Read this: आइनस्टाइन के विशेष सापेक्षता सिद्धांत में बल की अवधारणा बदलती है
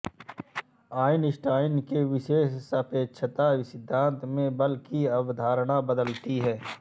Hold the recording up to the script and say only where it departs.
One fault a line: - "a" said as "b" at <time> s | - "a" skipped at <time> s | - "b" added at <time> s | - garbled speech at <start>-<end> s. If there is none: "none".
none